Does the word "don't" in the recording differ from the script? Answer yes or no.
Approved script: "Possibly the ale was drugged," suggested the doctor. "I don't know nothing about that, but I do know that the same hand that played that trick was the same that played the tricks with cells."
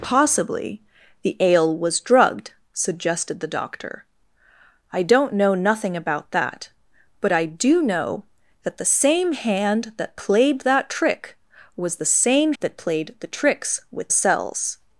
no